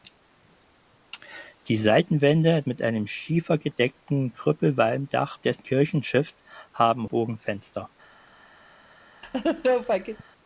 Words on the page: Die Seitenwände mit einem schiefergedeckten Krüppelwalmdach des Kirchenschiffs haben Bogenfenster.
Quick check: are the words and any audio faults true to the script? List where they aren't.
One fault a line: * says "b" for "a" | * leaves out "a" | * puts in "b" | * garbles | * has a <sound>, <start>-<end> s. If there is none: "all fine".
* has a laugh, 9.2-10.2 s